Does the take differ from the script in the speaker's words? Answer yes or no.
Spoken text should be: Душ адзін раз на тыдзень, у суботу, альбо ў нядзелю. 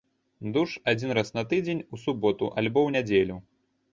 no